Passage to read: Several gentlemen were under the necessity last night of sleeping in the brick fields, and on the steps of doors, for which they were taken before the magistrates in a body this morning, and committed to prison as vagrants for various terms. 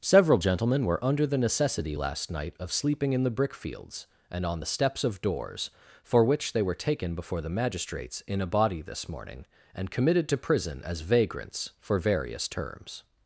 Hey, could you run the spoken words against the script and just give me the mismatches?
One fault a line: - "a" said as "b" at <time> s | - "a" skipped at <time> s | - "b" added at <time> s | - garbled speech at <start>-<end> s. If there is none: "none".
none